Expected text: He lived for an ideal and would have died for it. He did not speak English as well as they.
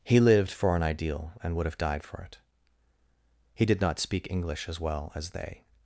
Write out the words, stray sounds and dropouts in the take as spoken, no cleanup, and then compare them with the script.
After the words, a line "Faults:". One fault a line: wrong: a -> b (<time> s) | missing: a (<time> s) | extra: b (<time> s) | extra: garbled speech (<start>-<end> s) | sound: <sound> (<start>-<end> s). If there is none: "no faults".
He lived for an ideal and would have died for it. He did not speak English as well as they.
Faults:
no faults